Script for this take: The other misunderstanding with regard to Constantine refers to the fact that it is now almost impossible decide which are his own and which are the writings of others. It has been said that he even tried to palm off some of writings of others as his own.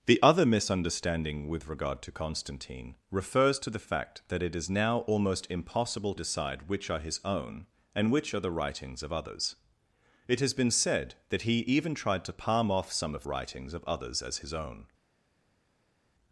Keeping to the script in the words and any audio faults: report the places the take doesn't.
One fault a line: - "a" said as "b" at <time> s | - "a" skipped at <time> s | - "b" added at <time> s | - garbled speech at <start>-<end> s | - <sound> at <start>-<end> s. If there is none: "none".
none